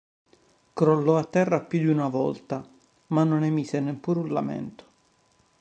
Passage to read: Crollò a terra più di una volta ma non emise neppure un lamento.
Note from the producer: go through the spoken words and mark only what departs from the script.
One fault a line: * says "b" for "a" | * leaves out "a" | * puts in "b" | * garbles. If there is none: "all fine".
all fine